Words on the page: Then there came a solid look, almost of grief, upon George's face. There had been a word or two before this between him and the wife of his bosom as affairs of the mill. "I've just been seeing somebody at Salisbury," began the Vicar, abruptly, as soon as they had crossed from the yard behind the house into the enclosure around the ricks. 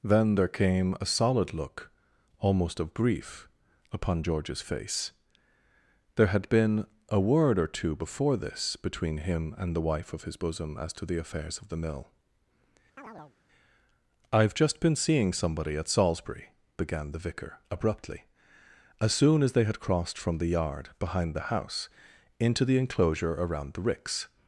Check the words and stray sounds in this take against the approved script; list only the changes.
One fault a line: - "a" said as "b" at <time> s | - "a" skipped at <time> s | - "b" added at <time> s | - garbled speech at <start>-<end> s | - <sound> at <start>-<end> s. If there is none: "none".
- "to the" added at 10.9 s
- chirp at 13.0-13.4 s